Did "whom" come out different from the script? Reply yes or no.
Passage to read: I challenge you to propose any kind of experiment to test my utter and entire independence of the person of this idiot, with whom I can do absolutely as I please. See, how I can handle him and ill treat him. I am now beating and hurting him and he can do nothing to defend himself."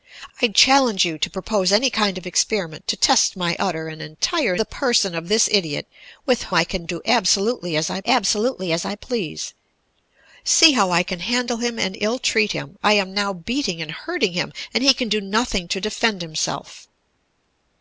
yes